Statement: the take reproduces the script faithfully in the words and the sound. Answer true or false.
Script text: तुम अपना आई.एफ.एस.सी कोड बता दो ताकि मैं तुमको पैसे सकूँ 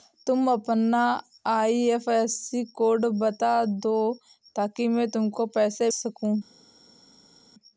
true